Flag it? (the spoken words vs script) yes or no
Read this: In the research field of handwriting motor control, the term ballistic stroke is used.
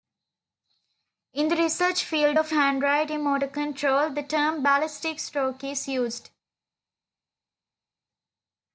no